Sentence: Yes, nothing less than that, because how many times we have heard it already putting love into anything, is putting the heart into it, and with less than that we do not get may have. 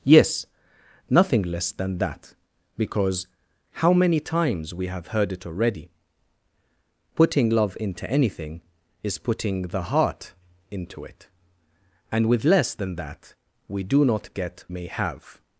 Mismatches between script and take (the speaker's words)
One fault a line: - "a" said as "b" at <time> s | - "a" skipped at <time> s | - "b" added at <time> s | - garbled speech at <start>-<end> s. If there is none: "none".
none